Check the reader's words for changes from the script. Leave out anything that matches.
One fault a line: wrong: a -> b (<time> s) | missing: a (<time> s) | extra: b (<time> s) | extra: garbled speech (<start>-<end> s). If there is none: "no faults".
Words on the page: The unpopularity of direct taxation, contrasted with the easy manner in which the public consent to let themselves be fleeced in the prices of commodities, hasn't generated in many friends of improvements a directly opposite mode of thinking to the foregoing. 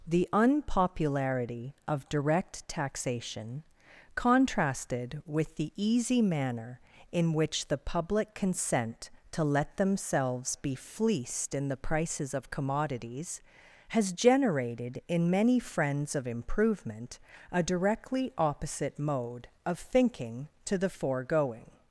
wrong: hasn't -> has (13.9 s)
wrong: improvements -> improvement (16.3 s)